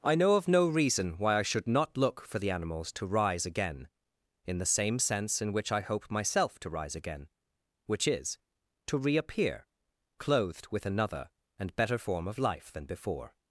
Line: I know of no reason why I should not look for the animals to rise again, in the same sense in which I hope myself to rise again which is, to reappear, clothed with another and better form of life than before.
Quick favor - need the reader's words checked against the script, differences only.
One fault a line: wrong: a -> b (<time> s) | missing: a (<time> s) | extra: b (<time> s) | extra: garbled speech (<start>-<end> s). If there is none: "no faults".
no faults